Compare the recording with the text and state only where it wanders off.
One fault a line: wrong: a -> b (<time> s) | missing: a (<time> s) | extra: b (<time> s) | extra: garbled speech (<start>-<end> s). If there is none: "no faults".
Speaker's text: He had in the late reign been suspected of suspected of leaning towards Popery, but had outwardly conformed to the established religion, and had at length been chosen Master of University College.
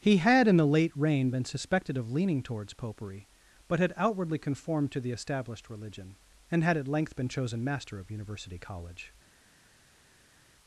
missing: suspected of (2.1 s)